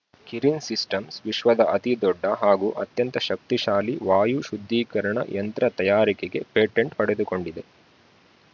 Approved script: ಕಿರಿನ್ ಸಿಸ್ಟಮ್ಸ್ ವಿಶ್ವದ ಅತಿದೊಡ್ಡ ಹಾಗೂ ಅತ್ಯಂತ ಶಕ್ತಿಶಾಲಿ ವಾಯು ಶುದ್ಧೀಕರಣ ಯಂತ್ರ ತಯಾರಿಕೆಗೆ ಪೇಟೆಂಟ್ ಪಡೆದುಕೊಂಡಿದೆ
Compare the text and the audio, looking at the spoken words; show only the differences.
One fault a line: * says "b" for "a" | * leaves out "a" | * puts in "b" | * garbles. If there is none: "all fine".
all fine